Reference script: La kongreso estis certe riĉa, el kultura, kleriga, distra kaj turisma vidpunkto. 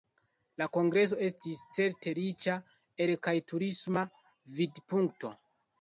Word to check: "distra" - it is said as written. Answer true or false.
false